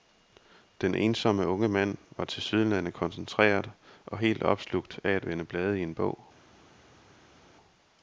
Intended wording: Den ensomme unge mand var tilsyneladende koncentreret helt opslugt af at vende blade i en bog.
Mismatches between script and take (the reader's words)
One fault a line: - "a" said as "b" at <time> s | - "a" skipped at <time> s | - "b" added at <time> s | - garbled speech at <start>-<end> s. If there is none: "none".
- "og" added at 4.0 s